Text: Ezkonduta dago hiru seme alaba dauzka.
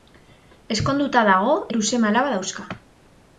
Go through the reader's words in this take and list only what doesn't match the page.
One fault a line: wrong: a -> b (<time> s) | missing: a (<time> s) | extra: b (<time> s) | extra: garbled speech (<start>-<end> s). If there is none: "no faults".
no faults